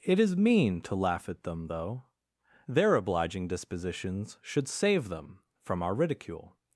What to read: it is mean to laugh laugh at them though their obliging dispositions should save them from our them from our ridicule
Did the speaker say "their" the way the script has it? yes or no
yes